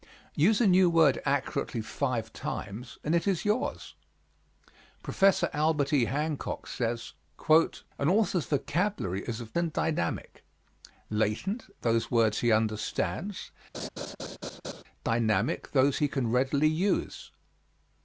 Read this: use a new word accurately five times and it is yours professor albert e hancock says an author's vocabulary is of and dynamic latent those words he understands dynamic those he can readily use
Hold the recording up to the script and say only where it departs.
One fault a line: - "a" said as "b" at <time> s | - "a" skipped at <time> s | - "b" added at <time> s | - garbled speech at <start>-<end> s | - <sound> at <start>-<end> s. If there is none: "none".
- laugh at 13.7-14.8 s